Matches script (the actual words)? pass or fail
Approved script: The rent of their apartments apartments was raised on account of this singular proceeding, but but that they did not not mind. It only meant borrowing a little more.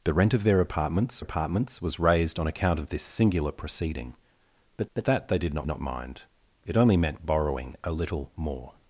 pass